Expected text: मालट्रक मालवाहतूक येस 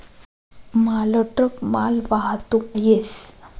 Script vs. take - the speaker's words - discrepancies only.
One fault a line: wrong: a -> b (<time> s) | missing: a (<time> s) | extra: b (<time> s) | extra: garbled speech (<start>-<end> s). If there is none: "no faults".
no faults